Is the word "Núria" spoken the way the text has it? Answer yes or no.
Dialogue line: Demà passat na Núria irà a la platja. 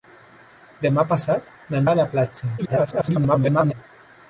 no